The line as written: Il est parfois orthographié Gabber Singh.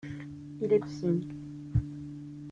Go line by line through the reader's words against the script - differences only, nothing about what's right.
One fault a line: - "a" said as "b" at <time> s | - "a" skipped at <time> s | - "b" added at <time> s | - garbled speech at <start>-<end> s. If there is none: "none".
- "parfois orthographié Gabber" skipped at 0.8 s